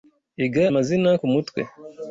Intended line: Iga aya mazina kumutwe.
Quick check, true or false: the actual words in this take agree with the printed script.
false